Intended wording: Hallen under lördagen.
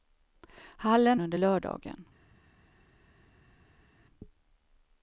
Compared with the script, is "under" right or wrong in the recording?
right